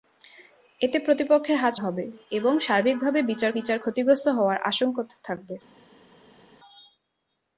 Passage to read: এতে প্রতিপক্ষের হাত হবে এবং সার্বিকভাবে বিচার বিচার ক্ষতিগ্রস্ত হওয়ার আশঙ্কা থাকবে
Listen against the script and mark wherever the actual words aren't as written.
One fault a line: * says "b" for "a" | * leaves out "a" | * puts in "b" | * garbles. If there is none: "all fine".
all fine